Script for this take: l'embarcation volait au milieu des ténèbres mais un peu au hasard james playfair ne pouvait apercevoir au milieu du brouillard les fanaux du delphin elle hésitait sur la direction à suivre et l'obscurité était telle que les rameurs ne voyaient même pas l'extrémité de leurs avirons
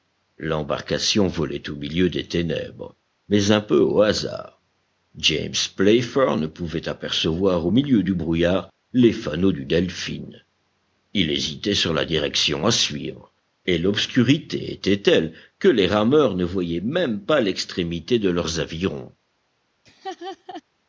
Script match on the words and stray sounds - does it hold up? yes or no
no